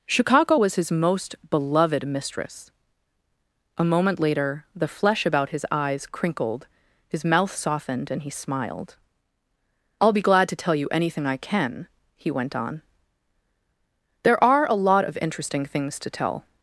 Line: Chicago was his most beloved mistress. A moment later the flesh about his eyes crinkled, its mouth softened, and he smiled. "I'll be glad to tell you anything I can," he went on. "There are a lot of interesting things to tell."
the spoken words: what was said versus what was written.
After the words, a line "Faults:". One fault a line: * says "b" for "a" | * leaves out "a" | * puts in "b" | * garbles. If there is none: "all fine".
Chicago was his most beloved mistress. A moment later the flesh about his eyes crinkled, his mouth softened, and he smiled. "I'll be glad to tell you anything I can," he went on. "There are a lot of interesting things to tell."
Faults:
* says "his" for "its"